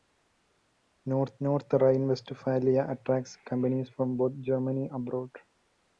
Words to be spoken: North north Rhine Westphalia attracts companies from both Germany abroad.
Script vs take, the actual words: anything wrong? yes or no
no